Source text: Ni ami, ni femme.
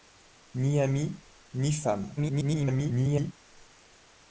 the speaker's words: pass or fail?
fail